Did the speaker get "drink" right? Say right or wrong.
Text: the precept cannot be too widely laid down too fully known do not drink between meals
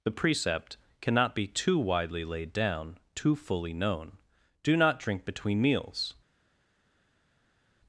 right